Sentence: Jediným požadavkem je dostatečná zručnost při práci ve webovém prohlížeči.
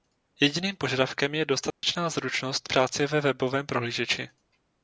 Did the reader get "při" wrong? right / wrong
wrong